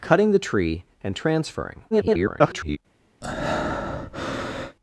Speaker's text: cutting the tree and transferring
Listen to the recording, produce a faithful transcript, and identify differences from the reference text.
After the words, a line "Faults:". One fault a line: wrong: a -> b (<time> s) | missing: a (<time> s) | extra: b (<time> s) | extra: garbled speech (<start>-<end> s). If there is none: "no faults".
cutting the tree and transferring [garbled]
Faults:
extra: garbled speech (1.9-2.8 s)